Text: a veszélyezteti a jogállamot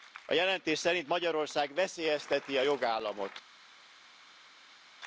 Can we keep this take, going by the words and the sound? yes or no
no